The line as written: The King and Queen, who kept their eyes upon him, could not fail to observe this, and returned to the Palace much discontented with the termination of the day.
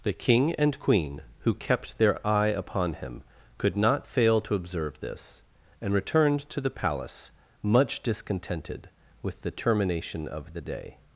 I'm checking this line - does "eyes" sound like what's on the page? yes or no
no